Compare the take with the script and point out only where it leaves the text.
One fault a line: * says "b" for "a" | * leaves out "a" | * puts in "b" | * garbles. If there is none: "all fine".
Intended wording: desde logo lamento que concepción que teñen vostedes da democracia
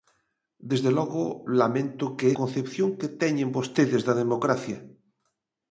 all fine